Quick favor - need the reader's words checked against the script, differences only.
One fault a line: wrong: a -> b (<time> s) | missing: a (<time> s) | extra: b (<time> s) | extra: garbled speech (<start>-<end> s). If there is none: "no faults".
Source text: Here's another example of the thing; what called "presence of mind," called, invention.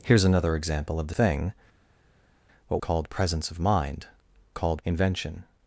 no faults